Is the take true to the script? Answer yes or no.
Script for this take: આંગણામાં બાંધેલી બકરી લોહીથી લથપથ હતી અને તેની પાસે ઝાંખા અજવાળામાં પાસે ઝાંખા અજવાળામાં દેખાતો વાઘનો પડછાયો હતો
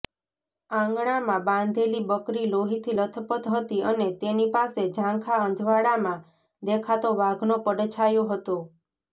no